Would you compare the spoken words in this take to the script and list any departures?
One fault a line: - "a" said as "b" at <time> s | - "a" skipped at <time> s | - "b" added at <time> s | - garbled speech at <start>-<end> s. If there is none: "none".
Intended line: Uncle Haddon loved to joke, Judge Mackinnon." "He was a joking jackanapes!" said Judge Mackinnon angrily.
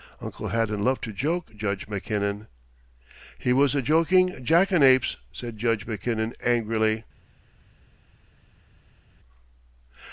none